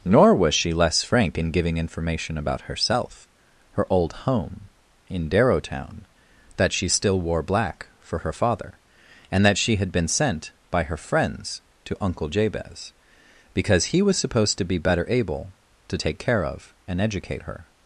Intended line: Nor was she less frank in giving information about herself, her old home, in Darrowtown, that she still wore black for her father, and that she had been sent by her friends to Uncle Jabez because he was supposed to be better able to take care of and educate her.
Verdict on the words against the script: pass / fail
pass